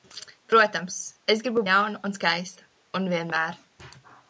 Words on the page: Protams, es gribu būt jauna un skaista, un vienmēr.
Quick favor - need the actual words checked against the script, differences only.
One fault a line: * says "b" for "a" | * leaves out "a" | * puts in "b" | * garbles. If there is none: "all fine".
* leaves out "būt"